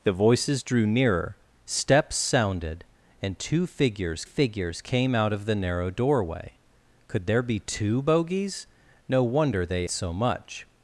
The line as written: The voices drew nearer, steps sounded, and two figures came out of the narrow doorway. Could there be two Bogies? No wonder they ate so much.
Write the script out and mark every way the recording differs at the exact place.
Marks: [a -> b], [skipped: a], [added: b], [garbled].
The voices drew nearer, steps sounded, and two figures [added: figures] came out of the narrow doorway. Could there be two Bogies? No wonder they [skipped: ate] so much.